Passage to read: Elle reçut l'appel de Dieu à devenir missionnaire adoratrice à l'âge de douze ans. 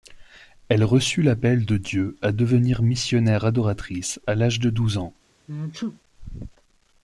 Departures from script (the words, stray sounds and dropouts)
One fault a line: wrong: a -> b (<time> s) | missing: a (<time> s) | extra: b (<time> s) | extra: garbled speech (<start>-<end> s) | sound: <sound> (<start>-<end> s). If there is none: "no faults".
sound: sneeze (5.5-6.0 s)